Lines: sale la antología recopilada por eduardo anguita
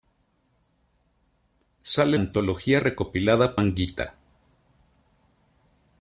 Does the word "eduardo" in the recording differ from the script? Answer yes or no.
yes